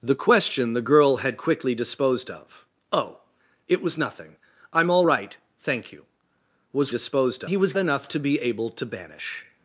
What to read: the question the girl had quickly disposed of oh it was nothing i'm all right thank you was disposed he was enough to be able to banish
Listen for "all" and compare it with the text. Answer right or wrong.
right